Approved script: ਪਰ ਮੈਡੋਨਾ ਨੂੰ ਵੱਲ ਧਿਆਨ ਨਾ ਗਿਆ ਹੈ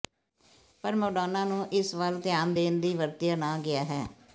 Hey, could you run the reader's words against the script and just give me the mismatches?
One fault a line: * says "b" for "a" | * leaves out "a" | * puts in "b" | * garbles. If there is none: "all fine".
* puts in "ਇਸ"
* puts in "ਦੇਣ ਦੀ ਵਰਤਿਆ"